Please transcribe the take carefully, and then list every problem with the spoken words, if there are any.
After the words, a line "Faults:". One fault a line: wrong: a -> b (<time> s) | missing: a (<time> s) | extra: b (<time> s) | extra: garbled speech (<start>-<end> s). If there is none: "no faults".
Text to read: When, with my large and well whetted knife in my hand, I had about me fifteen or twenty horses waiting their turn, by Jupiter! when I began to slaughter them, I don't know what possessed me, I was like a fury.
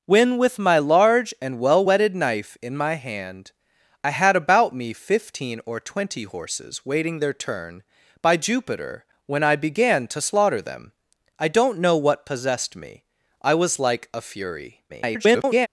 When, with my large and well whetted knife in my hand, I had about me fifteen or twenty horses waiting their turn, by Jupiter! when I began to slaughter them, I don't know what possessed me, I was like a fury. [garbled]
Faults:
extra: garbled speech (14.9-15.7 s)